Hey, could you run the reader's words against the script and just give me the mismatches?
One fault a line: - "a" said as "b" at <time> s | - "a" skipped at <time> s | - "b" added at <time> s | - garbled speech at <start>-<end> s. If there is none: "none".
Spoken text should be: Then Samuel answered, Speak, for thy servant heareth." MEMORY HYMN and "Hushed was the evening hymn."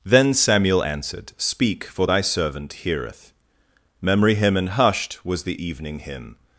none